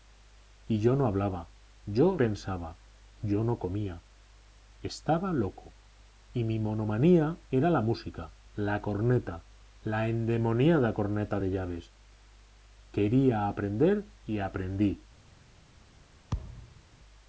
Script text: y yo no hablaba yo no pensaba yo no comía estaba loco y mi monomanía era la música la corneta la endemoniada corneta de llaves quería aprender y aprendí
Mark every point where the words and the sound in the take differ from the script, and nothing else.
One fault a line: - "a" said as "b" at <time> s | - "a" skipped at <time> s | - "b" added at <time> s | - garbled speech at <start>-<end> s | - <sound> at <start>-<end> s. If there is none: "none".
- "no" skipped at 2.2 s
- thud at 16.3-16.8 s